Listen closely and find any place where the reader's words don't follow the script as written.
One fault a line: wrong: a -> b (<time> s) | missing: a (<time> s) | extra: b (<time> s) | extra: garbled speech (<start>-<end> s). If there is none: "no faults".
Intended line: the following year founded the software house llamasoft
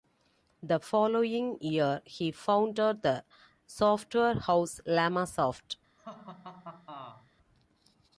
extra: he (2.0 s)